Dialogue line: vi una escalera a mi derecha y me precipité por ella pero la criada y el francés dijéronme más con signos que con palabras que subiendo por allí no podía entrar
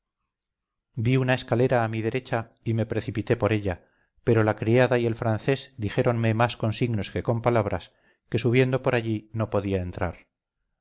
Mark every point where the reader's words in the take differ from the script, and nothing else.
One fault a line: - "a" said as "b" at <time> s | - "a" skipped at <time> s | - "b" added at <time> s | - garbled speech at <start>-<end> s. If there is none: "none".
none